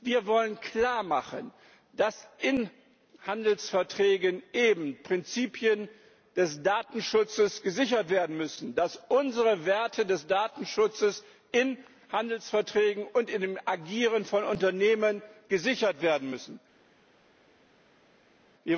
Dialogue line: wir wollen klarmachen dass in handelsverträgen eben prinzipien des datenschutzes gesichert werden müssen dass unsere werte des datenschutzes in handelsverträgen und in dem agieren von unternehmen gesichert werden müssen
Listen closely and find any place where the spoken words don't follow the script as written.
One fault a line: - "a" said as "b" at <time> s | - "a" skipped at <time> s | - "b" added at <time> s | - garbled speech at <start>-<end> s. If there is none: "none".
none